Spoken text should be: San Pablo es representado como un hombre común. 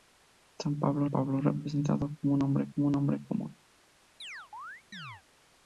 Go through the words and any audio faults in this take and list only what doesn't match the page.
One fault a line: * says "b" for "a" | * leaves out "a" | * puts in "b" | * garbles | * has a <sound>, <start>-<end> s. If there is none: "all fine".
* puts in "Pablo"
* puts in "como un hombre"
* has a chirp, 4.2-5.2 s